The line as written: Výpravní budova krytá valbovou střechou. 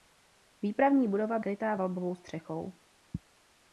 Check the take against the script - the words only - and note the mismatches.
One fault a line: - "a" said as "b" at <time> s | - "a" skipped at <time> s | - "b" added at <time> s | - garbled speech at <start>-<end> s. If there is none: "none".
none